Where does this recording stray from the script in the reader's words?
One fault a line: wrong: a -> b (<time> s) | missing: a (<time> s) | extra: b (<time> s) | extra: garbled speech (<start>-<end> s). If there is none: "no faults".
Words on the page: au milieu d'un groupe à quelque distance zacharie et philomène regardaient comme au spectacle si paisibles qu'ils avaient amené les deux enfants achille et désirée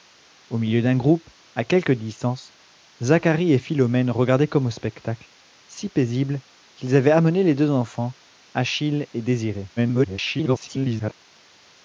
extra: garbled speech (9.8-11.2 s)